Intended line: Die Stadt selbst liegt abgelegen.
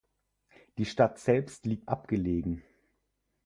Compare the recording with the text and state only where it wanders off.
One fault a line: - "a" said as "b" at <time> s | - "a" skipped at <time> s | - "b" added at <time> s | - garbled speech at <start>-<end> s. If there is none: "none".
none